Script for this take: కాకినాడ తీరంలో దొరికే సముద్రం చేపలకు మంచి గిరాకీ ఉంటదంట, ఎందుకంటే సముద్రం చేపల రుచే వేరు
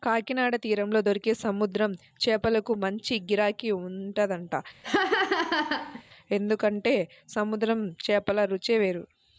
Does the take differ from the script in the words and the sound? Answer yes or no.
yes